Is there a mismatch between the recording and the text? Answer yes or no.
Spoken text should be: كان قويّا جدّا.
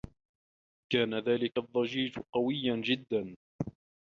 yes